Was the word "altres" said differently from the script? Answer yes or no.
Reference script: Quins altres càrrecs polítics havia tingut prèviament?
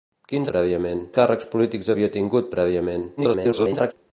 yes